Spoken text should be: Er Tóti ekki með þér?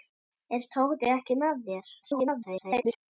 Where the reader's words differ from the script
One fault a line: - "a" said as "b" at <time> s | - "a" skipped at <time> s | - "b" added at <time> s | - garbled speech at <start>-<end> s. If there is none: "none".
- garbled speech at 2.0-3.0 s